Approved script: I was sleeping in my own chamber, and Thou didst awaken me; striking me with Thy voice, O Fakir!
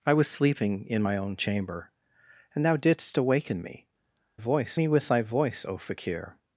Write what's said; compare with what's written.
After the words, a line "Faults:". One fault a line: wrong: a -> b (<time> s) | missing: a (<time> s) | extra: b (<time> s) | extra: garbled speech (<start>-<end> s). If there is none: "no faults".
I was sleeping in my own chamber, and Thou didst awaken me; voice me with Thy voice, O Fakir!
Faults:
wrong: striking -> voice (4.3 s)